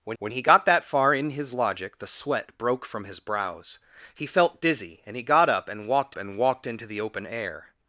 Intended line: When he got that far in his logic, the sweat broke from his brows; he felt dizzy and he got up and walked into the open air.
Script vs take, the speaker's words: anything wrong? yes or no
yes